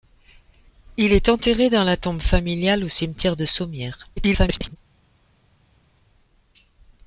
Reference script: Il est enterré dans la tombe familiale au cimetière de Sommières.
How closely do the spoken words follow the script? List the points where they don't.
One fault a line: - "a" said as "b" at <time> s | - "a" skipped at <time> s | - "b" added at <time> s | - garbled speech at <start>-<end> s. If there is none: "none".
- garbled speech at 4.2-4.8 s